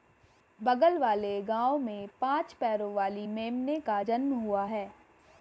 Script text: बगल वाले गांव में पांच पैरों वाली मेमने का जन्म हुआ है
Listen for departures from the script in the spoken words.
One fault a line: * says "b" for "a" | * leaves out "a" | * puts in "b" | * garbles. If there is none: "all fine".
all fine